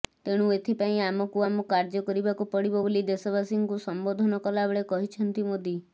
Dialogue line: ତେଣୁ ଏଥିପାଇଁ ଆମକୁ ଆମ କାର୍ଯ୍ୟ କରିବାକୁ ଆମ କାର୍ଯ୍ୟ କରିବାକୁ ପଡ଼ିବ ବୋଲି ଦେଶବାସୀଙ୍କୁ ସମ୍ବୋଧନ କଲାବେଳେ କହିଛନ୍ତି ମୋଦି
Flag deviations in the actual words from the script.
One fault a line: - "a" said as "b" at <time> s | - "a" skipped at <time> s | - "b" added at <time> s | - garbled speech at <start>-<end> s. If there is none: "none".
- "ଆମ କାର୍ଯ୍ୟ କରିବାକୁ" skipped at 2.5 s